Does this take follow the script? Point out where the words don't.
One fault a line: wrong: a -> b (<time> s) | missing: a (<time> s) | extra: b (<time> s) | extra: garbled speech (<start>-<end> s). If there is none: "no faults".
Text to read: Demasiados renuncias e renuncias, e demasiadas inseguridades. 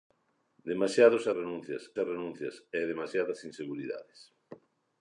no faults